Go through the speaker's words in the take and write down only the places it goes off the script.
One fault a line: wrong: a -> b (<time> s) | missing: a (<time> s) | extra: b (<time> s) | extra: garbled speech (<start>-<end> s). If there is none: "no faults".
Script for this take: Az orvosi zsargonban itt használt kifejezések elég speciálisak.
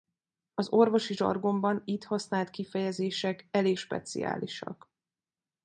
no faults